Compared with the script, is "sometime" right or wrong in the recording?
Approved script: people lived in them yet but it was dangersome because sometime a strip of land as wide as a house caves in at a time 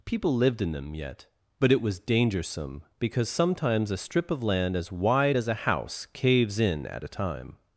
wrong